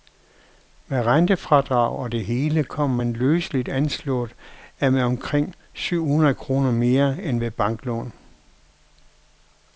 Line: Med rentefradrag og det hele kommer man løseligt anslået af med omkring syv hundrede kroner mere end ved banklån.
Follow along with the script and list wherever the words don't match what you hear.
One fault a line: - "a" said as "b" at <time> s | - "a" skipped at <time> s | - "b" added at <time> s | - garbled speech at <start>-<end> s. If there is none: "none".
none